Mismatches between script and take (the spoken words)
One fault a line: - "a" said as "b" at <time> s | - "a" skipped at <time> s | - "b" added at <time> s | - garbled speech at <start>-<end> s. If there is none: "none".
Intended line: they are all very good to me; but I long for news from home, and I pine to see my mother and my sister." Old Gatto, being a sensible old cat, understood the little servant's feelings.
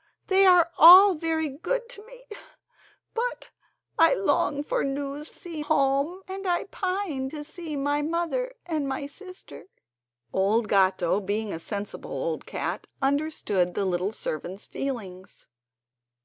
- "from" said as "see" at 5.3 s